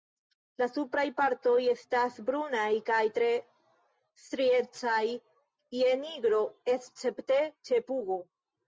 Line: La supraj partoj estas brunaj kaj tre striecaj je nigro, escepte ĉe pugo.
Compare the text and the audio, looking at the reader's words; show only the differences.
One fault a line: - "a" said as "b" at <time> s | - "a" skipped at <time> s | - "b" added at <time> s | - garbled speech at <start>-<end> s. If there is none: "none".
none